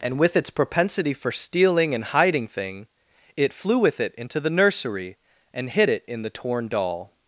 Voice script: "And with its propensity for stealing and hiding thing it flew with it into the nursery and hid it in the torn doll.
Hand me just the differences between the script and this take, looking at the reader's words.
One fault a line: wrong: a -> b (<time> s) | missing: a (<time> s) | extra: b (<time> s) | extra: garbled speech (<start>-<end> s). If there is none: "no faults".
no faults